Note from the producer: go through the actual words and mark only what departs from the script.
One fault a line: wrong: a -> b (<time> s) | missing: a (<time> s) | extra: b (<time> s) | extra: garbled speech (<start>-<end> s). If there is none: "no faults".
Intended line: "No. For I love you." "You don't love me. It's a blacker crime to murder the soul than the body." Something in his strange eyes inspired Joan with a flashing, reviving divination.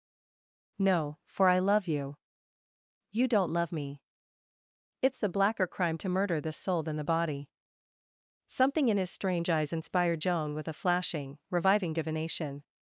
wrong: a -> the (5.2 s)